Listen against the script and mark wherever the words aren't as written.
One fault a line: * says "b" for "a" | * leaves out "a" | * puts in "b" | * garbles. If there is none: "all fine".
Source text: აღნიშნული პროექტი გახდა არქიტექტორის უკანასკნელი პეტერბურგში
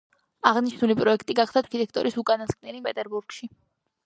all fine